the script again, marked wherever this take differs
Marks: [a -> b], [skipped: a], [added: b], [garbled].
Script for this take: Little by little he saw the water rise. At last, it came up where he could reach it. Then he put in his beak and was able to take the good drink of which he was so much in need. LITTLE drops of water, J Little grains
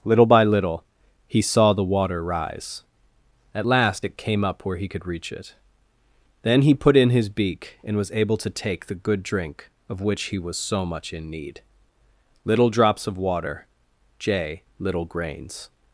Little by little he saw the water rise. At last, it came up where he could reach it. Then he put in his beak and was able to take the good drink of which he was so much in need. LITTLE drops of water, J Little grains